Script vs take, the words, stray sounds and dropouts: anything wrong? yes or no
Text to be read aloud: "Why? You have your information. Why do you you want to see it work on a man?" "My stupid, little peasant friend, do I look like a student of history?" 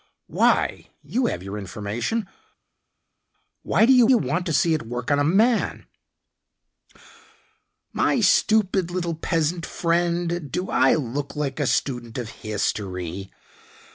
no